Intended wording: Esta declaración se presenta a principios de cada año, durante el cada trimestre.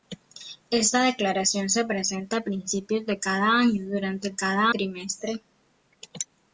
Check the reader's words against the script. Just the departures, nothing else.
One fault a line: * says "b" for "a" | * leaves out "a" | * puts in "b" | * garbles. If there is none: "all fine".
all fine